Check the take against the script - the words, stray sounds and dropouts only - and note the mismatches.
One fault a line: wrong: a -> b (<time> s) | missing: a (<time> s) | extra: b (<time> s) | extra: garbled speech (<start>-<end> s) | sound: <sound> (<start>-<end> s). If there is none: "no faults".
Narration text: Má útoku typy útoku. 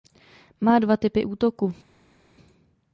wrong: útoku -> dva (0.8 s)